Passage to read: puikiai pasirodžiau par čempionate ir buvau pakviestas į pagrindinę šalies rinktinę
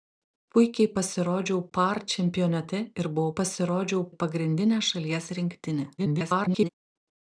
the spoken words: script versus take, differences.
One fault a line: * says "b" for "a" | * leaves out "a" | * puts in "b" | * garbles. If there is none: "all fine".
* says "pasirodžiau" for "pakviestas"
* garbles